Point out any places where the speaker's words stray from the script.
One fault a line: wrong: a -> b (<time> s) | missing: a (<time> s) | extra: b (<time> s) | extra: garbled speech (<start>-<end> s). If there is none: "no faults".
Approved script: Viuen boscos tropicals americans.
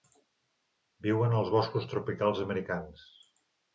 extra: als (1.4 s)